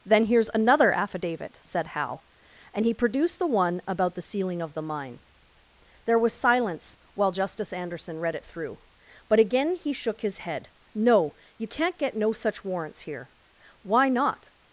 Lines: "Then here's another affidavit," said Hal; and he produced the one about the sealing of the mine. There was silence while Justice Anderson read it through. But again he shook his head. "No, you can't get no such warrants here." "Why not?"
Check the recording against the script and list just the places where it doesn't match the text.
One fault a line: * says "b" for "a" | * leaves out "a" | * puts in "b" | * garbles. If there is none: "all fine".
all fine